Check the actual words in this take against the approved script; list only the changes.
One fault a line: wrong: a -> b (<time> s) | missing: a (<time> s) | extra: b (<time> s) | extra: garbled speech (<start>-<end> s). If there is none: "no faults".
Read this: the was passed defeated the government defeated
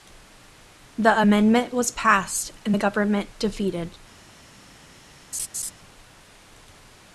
extra: amendment (1.2 s)
wrong: defeated -> and (2.6 s)